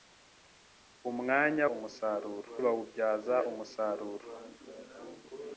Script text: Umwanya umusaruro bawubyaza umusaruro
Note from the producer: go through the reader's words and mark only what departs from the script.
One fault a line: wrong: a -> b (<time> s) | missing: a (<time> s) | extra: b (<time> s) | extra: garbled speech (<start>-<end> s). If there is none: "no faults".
no faults